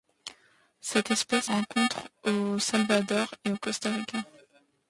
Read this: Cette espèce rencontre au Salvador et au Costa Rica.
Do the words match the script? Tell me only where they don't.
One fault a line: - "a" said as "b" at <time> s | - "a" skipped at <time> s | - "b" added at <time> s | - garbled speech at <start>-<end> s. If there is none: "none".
none